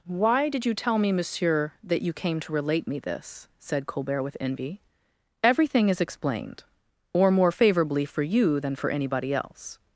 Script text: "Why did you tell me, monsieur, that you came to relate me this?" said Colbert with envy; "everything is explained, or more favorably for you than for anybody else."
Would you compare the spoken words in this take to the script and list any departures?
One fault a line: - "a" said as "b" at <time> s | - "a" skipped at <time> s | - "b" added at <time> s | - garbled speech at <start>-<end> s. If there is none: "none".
none